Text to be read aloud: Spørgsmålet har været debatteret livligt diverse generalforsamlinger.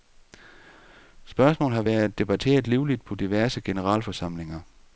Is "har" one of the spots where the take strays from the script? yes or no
no